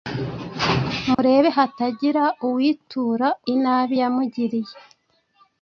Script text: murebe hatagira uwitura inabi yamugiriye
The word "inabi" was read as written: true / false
true